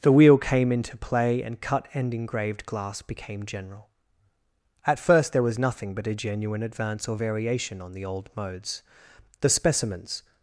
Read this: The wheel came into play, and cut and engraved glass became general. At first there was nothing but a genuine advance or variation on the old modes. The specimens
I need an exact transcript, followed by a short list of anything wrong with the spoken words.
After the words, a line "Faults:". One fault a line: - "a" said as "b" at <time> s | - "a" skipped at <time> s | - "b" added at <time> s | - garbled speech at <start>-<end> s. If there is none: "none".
The wheel came into play, and cut and engraved glass became general. At first there was nothing but a genuine advance or variation on the old modes. The specimens
Faults:
none